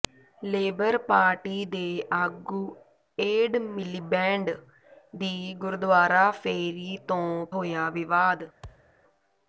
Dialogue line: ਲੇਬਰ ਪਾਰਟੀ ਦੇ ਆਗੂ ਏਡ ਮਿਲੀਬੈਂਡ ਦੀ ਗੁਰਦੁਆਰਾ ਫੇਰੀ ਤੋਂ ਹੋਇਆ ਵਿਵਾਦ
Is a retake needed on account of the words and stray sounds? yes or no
yes